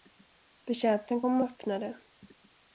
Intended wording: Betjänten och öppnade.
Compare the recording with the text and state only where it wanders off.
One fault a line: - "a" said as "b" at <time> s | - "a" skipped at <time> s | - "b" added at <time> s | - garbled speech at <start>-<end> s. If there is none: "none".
- "kom" added at 1.2 s